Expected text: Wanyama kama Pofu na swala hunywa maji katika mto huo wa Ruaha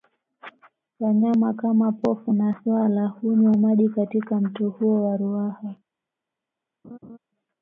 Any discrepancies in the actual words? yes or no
no